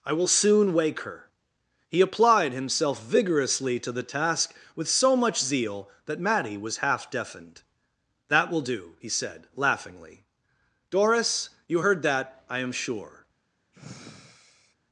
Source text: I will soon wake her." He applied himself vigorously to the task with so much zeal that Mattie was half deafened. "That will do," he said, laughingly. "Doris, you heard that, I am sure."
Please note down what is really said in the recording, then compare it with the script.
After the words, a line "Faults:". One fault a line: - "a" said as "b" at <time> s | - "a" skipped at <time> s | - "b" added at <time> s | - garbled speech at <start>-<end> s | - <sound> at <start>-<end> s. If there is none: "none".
I will soon wake her." He applied himself vigorously to the task with so much zeal that Mattie was half deafened. "That will do," he said, laughingly. "Doris, you heard that, I am sure."
Faults:
- sigh at 13.7-14.8 s